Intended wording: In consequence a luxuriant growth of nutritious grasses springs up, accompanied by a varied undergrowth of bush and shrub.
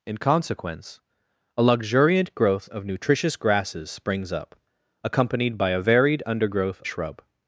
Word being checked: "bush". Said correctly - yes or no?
no